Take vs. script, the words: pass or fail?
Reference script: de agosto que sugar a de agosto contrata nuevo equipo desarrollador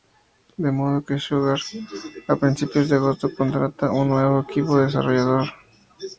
fail